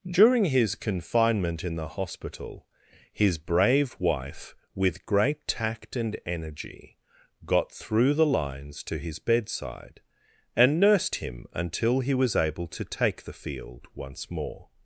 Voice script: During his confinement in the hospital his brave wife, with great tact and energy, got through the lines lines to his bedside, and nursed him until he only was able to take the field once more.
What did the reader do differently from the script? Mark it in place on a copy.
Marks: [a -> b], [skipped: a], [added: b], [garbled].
During his confinement in the hospital his brave wife, with great tact and energy, got through the lines [skipped: lines] to his bedside, and nursed him until he [skipped: only] was able to take the field once more.